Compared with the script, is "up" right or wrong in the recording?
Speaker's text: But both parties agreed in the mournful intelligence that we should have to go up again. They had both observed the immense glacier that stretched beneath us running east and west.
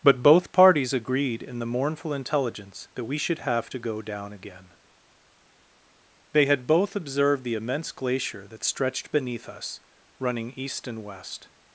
wrong